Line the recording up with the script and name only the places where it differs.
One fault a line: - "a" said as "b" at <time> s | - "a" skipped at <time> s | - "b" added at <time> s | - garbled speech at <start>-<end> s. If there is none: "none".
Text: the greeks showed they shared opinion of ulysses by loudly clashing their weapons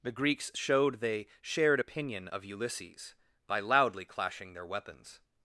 none